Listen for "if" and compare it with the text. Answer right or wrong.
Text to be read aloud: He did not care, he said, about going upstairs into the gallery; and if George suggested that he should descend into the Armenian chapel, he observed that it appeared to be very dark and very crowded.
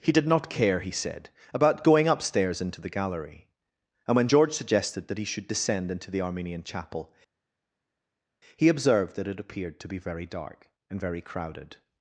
wrong